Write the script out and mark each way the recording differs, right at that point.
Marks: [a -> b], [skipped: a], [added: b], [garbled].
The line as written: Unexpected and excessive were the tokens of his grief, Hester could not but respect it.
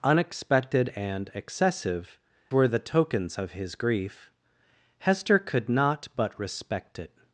Unexpected and excessive were the tokens of his grief, Hester could not but respect it.